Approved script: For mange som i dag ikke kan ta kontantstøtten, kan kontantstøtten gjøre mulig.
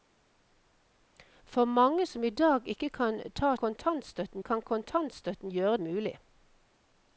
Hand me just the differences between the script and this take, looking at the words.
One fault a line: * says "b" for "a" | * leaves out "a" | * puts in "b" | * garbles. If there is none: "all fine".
all fine